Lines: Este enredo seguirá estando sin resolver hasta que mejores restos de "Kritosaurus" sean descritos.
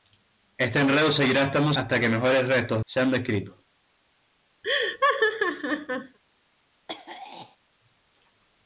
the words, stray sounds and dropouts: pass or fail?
fail